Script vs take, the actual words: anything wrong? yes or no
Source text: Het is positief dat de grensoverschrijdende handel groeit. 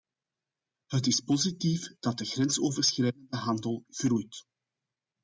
no